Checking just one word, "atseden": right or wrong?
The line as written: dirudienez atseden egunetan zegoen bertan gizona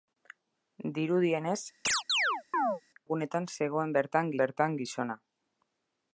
wrong